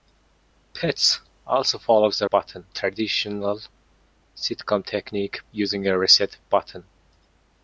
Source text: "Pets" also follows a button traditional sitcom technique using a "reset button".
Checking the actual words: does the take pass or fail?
pass